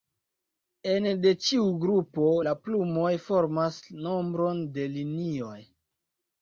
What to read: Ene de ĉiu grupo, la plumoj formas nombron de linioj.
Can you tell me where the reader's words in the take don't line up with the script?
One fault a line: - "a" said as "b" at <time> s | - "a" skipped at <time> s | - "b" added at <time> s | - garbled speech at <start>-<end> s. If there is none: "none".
none